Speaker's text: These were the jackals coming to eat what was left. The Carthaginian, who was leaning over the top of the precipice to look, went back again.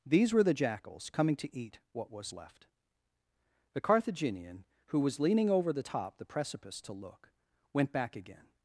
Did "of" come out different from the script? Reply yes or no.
yes